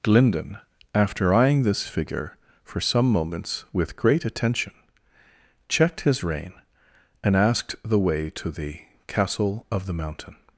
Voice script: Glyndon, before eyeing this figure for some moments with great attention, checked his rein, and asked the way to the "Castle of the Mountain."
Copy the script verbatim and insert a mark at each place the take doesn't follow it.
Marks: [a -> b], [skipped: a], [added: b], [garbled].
Glyndon, [before -> after] eyeing this figure for some moments with great attention, checked his rein, and asked the way to the "Castle of the Mountain."